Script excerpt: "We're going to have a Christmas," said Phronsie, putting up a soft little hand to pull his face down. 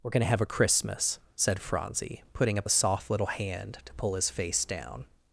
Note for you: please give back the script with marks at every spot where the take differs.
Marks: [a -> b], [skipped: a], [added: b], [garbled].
"We're going to have a Christmas," said Phronsie, putting up a soft little hand to pull his face down.